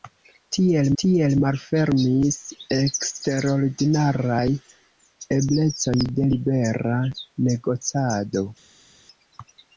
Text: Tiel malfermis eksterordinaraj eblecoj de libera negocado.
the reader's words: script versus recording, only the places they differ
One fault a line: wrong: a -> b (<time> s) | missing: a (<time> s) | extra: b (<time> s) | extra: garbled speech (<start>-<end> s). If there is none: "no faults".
extra: tiel (1.0 s)